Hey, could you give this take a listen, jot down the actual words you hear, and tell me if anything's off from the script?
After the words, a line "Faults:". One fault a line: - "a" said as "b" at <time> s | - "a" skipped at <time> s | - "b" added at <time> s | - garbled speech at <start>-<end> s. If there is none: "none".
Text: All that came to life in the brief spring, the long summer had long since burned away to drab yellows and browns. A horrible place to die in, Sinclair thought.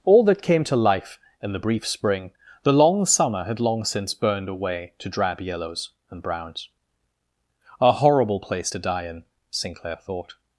All that came to life in the brief spring, the long summer had long since burned away to drab yellows and browns. A horrible place to die in, Sinclair thought.
Faults:
none